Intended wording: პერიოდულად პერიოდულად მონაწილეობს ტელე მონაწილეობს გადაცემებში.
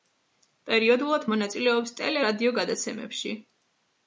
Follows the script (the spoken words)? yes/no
no